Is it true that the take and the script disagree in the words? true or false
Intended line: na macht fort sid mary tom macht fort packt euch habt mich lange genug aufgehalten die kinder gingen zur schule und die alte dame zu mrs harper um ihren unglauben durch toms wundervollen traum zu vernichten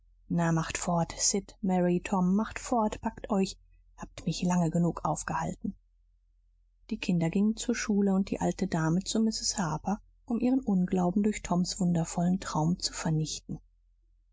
false